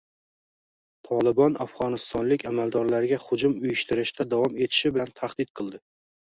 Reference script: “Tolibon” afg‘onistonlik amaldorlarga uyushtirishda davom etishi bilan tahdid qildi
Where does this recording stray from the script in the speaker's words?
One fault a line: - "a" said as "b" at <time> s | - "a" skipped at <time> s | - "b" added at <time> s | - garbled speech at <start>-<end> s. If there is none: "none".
- "hujum" added at 3.3 s